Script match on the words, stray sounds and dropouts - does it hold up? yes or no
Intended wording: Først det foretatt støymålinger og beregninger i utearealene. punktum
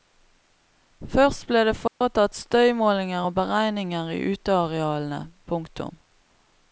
no